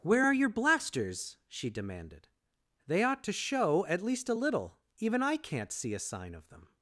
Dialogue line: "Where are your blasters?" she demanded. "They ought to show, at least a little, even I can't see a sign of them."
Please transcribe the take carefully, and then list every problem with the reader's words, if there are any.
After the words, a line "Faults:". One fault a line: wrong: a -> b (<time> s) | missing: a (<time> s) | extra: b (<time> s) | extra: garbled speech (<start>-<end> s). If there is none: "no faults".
"Where are your blasters?" she demanded. "They ought to show, at least a little, even I can't see a sign of them."
Faults:
no faults